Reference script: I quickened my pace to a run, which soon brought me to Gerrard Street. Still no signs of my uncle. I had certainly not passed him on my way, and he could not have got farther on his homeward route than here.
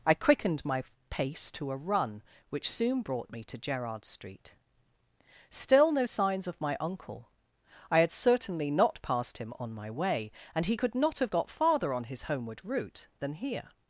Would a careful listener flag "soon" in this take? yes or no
no